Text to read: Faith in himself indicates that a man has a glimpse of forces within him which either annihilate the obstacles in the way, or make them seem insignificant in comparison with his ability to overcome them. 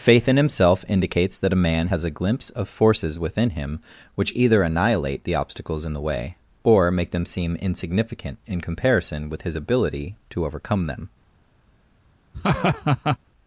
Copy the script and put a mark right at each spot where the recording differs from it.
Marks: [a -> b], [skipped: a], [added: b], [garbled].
Faith in himself indicates that a man has a glimpse of forces within him which either annihilate the obstacles in the way, or make them seem insignificant in comparison with his ability to overcome them.